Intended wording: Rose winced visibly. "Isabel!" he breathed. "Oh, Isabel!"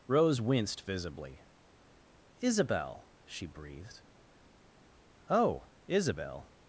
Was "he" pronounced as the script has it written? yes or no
no